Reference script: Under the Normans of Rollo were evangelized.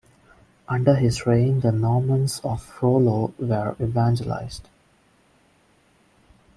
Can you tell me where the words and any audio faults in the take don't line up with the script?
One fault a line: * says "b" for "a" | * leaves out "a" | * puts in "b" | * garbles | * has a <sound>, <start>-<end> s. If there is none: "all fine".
* puts in "his reign"